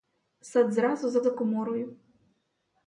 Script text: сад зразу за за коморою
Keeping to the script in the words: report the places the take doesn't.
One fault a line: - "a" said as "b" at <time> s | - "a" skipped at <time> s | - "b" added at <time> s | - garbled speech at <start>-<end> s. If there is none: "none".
none